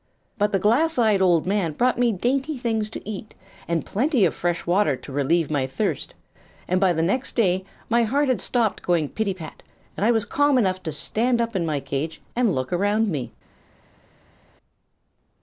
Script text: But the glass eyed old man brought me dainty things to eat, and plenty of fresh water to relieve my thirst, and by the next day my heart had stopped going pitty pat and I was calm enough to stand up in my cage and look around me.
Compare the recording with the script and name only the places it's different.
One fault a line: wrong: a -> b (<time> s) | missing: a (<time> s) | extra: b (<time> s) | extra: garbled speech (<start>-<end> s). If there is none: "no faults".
no faults